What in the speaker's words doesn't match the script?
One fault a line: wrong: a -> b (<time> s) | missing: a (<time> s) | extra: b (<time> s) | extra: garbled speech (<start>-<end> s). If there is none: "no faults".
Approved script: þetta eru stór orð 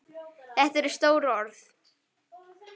no faults